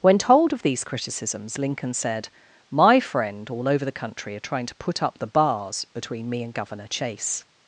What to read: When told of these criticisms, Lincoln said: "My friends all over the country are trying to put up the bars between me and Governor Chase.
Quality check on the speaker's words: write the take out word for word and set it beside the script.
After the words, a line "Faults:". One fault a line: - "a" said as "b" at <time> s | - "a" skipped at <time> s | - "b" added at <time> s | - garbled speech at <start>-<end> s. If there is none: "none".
When told of these criticisms, Lincoln said: "My friend all over the country are trying to put up the bars between me and Governor Chase.
Faults:
- "friends" said as "friend" at 3.0 s